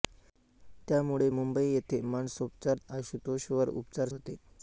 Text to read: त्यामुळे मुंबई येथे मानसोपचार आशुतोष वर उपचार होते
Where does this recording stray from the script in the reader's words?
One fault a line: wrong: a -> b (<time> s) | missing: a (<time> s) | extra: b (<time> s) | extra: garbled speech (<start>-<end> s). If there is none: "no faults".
no faults